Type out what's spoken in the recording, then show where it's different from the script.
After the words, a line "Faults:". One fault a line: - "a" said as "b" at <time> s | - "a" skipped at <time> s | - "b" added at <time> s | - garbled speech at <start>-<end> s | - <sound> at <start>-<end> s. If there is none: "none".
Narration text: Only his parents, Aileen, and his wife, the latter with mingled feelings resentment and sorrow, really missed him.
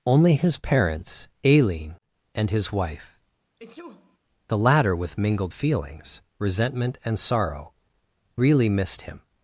Only his parents, Aileen, and his wife, the latter with mingled feelings resentment and sorrow, really missed him.
Faults:
- sneeze at 3.6-4.2 s